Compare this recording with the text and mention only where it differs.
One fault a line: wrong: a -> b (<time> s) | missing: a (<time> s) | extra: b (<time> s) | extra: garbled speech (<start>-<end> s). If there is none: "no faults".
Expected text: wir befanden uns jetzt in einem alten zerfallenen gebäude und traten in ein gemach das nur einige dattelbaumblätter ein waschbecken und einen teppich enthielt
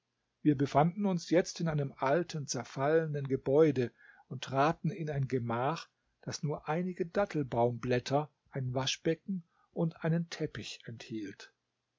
no faults